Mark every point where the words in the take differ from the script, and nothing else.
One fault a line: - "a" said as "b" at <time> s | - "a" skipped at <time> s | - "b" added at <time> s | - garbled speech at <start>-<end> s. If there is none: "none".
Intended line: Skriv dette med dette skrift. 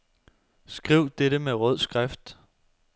- "dette" said as "rød" at 1.5 s